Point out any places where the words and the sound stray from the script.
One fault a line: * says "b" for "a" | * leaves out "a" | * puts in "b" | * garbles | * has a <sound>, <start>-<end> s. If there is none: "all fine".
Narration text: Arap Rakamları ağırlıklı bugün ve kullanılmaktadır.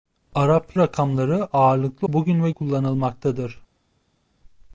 all fine